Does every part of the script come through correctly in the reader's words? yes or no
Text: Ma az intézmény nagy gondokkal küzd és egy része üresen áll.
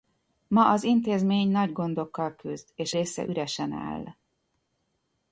no